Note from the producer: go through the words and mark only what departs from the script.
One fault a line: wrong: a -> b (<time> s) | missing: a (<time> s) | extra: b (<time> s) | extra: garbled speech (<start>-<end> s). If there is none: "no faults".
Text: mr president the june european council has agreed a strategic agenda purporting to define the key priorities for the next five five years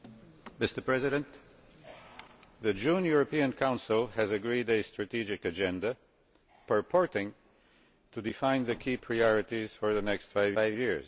no faults